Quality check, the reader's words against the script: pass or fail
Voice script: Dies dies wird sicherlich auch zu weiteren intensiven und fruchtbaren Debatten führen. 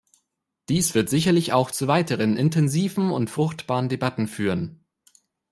fail